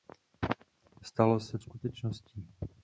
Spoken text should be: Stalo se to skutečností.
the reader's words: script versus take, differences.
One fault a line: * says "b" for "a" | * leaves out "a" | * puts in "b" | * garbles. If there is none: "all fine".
* leaves out "to"